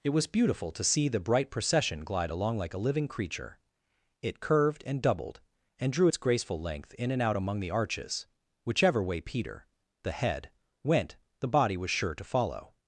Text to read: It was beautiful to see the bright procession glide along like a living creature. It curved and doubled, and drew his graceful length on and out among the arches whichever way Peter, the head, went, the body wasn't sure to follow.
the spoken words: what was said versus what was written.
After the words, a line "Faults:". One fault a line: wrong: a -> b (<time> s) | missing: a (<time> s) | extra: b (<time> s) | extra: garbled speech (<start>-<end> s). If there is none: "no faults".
It was beautiful to see the bright procession glide along like a living creature. It curved and doubled, and drew its graceful length in and out among the arches whichever way Peter, the head, went, the body was sure to follow.
Faults:
wrong: his -> its (6.0 s)
wrong: on -> in (6.9 s)
wrong: wasn't -> was (11.7 s)